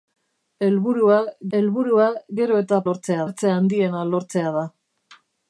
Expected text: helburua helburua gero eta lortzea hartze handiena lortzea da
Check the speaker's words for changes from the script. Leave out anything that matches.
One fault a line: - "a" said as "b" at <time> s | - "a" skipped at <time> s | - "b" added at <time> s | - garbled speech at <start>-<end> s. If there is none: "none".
none